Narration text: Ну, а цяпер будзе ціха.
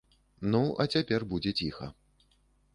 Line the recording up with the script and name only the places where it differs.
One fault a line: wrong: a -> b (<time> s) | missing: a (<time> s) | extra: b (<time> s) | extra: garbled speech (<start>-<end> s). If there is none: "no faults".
no faults